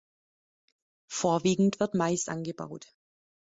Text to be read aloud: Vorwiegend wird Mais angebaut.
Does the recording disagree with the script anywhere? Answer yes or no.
no